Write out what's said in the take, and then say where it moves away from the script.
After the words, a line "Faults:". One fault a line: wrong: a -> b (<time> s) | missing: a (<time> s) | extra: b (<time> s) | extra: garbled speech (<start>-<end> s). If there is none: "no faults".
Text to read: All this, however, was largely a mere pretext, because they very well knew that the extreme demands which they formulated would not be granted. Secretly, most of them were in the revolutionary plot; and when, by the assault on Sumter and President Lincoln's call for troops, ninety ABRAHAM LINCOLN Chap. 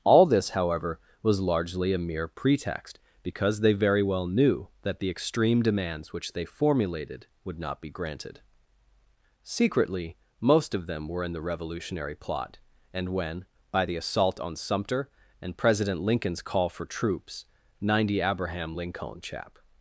All this, however, was largely a mere pretext, because they very well knew that the extreme demands which they formulated would not be granted. Secretly, most of them were in the revolutionary plot; and when, by the assault on Sumter and President Lincoln's call for troops, ninety ABRAHAM LINCOLN Chap.
Faults:
no faults